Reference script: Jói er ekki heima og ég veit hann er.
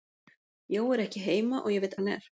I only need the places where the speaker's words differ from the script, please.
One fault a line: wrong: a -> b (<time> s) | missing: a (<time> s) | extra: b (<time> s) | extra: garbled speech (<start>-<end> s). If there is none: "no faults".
no faults